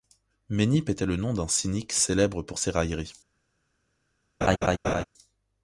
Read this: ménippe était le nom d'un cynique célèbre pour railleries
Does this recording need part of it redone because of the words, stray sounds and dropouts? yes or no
yes